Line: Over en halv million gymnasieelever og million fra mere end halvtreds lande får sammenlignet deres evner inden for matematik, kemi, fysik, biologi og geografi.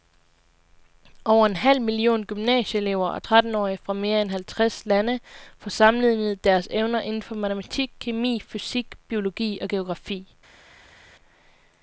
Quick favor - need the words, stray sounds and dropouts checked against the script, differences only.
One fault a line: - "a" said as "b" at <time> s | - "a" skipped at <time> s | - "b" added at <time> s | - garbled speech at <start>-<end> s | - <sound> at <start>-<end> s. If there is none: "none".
- "million" said as "trettenårige" at 3.2 s